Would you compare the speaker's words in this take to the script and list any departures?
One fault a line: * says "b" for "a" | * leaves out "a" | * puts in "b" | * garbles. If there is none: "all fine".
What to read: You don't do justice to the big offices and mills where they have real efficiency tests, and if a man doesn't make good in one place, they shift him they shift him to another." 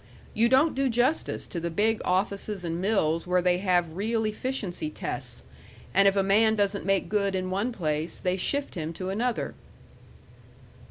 * leaves out "they shift him"